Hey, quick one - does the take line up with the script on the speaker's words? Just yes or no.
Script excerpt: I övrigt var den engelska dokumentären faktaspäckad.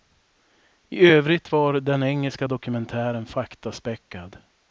yes